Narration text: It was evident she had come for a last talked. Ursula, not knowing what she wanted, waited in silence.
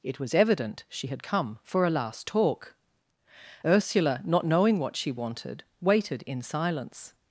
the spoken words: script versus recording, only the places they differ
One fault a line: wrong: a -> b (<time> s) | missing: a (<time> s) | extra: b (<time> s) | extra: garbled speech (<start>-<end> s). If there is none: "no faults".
wrong: talked -> talk (2.3 s)